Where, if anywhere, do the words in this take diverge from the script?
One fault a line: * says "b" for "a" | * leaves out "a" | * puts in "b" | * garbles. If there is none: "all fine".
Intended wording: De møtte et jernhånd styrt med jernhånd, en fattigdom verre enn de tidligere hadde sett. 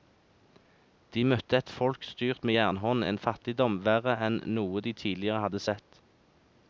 * says "folk" for "jernhånd"
* puts in "noe"